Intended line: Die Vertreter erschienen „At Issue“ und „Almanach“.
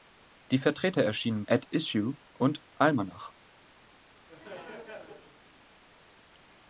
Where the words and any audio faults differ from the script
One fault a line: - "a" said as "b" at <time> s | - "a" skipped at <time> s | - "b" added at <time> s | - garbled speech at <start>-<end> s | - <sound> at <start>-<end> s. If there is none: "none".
- laugh at 4.3-5.4 s